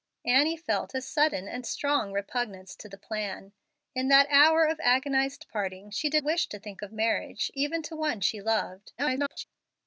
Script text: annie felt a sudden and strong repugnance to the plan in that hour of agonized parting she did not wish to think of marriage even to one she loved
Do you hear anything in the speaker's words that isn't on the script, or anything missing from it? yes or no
yes